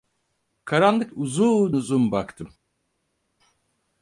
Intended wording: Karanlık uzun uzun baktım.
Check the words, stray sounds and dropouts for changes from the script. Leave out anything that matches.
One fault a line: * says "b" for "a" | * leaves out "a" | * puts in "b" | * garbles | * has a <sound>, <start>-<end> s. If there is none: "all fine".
all fine